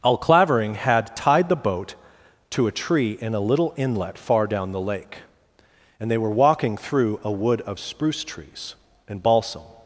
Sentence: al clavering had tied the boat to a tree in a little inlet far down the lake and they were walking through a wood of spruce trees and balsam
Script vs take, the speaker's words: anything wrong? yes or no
no